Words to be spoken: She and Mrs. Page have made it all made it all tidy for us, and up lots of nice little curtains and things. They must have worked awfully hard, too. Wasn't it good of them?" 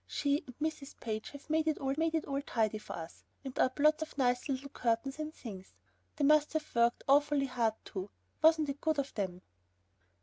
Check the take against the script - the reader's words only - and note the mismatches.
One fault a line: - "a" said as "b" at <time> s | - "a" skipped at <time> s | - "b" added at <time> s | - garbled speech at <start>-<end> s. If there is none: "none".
none